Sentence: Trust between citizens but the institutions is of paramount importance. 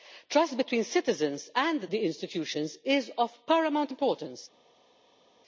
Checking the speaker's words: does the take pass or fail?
fail